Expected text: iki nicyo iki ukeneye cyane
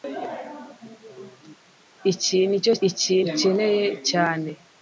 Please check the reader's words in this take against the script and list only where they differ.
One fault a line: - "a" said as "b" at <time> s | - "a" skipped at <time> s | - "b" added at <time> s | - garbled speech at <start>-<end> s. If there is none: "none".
none